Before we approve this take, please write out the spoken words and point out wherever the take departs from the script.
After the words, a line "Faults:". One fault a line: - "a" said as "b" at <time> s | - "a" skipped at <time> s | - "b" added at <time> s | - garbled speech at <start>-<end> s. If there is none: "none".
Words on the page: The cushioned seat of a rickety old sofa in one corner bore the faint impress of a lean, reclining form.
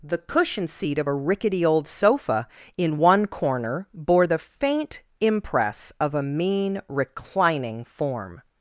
The cushion seat of a rickety old sofa in one corner bore the faint impress of a mean, reclining form.
Faults:
- "cushioned" said as "cushion" at 0.2 s
- "lean" said as "mean" at 6.2 s